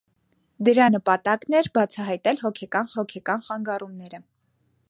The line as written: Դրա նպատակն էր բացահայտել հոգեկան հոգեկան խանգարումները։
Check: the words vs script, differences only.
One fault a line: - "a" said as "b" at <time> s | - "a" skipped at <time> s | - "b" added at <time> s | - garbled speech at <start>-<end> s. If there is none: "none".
none